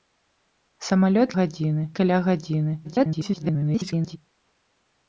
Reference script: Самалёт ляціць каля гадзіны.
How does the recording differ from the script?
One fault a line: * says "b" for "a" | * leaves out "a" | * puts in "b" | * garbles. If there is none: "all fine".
* says "гадзіны" for "ляціць"
* garbles